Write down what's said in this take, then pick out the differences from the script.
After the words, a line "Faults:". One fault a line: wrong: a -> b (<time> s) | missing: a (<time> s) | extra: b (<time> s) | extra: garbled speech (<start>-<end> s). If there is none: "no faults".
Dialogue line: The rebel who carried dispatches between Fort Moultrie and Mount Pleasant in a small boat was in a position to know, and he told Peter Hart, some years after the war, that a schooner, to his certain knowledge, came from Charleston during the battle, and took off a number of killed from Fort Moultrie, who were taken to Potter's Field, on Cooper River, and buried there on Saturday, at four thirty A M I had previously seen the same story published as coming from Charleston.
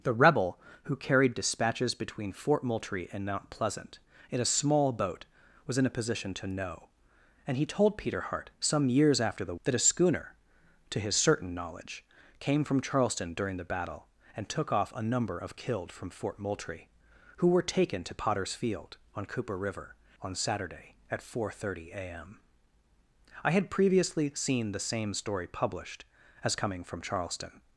The rebel who carried dispatches between Fort Moultrie and Mount Pleasant in a small boat was in a position to know, and he told Peter Hart, some years after the that a schooner, to his certain knowledge, came from Charleston during the battle, and took off a number of killed from Fort Moultrie, who were taken to Potter's Field, on Cooper River, on Saturday, at four thirty A M I had previously seen the same story published as coming from Charleston.
Faults:
missing: war (9.6 s)
missing: and buried there (20.0 s)